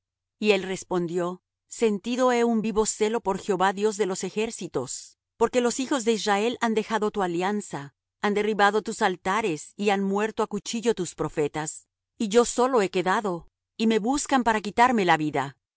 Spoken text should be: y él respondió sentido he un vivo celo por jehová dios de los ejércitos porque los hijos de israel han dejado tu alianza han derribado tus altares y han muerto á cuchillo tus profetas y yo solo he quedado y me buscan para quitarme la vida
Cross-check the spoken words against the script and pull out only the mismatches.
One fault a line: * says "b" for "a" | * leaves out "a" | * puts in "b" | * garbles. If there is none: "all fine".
all fine